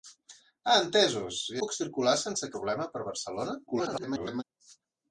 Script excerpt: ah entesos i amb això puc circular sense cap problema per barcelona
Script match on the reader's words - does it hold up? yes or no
no